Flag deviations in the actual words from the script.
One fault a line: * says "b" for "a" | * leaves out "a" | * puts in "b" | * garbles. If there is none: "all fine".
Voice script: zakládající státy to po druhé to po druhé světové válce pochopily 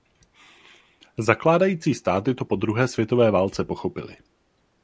* leaves out "to po druhé"